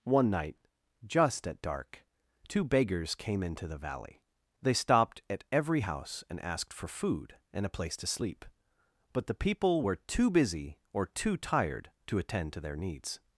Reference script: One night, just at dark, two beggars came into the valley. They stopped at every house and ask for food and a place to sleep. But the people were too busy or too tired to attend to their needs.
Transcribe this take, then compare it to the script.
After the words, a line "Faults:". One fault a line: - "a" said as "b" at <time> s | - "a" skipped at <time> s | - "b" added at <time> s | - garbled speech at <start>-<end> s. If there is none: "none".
One night, just at dark, two beggars came into the valley. They stopped at every house and asked for food and a place to sleep. But the people were too busy or too tired to attend to their needs.
Faults:
- "ask" said as "asked" at 6.4 s